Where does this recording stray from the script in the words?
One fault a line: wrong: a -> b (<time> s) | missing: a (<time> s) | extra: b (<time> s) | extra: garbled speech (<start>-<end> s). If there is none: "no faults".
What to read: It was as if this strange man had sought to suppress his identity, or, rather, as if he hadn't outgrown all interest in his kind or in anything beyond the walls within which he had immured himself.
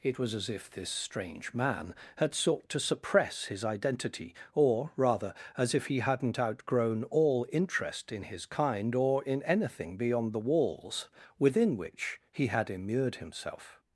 no faults